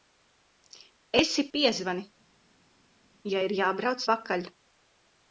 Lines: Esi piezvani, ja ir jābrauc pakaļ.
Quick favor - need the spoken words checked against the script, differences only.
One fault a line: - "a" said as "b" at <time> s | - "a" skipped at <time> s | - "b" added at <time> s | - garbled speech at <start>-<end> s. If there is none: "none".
none